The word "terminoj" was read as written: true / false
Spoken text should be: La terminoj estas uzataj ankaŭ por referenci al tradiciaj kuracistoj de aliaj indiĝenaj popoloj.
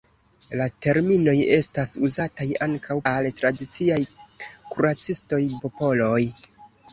true